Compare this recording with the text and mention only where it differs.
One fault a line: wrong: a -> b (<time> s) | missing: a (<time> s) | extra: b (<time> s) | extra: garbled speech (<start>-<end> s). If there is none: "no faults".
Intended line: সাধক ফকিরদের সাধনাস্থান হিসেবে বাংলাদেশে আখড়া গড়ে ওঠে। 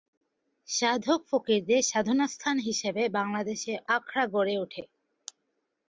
no faults